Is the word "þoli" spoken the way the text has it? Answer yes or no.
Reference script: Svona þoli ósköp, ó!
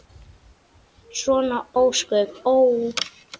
no